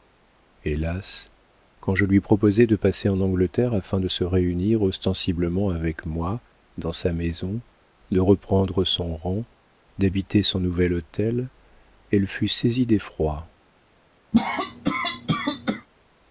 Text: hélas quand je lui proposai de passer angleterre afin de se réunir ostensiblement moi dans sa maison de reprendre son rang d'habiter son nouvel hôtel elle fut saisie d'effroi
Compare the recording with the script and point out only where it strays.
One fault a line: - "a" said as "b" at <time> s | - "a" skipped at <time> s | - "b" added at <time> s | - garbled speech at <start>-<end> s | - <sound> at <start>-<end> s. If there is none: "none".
- "en" added at 3.1 s
- "avec" added at 5.7 s
- cough at 14.3-15.9 s